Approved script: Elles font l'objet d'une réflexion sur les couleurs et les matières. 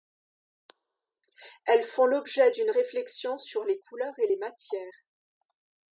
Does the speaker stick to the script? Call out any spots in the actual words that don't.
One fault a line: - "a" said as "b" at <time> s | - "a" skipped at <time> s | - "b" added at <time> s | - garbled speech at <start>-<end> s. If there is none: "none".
none